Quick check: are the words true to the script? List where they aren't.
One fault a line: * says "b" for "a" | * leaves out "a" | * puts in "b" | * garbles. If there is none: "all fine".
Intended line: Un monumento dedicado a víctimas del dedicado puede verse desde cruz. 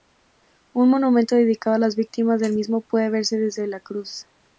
* puts in "las"
* says "mismo" for "dedicado"
* puts in "la"